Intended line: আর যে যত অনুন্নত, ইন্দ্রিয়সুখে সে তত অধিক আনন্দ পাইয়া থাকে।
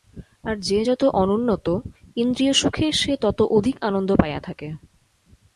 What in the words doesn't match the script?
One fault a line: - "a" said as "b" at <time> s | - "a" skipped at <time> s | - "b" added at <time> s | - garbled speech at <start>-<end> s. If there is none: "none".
none